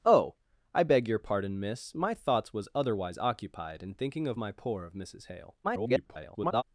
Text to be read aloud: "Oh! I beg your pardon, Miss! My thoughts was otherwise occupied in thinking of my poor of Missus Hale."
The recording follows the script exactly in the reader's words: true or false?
false